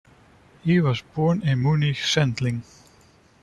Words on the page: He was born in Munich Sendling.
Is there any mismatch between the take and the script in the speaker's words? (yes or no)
no